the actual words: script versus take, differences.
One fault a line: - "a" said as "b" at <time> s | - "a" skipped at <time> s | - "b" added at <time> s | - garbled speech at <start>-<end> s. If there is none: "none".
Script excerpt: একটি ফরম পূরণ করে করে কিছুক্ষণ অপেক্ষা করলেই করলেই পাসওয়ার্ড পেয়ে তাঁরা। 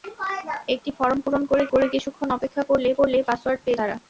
none